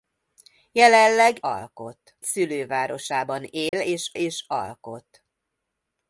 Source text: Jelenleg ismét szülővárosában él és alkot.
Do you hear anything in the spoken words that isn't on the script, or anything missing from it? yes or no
yes